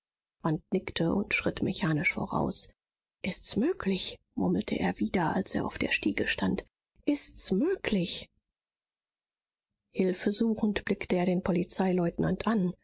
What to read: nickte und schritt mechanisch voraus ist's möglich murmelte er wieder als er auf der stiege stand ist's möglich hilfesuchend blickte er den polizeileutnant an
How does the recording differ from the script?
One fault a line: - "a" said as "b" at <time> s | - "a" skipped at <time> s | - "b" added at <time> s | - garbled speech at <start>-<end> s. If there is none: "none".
none